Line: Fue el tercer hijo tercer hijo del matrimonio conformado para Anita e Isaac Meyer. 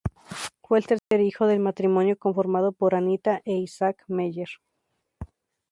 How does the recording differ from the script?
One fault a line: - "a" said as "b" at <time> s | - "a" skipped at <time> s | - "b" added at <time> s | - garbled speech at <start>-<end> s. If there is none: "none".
- "tercer hijo" skipped at 1.4 s
- "para" said as "por" at 2.7 s